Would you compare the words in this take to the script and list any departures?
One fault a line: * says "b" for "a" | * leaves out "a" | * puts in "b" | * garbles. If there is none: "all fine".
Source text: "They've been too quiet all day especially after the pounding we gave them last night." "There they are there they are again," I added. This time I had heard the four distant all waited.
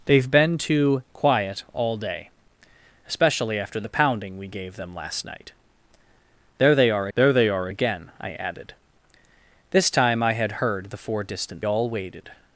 all fine